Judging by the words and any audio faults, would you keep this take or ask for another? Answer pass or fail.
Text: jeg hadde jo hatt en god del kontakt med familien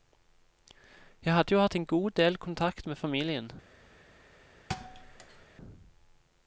fail